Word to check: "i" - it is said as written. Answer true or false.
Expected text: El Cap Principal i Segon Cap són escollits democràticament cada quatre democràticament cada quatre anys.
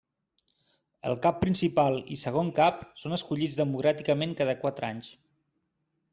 true